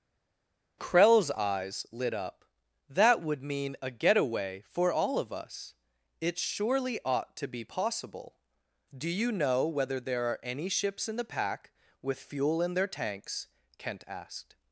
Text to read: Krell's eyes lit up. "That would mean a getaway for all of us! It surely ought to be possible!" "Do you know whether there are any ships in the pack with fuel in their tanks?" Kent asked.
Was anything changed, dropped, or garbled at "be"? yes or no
no